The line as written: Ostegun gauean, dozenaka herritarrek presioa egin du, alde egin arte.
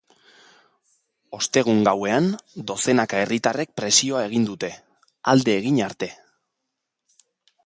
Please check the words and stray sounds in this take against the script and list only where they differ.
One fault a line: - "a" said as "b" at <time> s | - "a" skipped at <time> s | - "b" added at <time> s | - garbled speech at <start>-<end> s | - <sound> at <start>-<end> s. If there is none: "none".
- "du" said as "dute" at 4.5 s